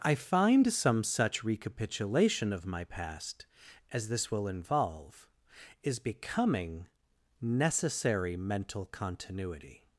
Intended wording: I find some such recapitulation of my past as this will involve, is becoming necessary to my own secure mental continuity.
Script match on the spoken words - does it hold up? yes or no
no